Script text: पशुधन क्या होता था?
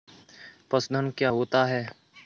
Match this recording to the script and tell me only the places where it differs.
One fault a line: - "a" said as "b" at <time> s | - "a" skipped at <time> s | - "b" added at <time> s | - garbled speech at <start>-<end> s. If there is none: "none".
- "था" said as "है" at 1.7 s